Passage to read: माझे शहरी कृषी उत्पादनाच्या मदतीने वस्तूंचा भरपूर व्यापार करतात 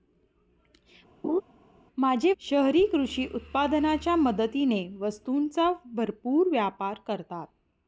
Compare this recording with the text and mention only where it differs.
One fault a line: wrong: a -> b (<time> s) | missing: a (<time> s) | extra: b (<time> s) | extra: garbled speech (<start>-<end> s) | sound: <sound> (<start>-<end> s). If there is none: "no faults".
sound: laugh (1.2-1.4 s)